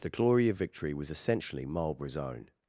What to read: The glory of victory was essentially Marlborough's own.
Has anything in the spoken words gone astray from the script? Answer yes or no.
no